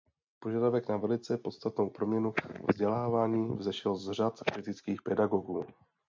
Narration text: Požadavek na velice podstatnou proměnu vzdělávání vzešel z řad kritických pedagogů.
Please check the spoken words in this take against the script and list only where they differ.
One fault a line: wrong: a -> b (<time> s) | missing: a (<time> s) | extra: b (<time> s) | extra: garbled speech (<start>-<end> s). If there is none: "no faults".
no faults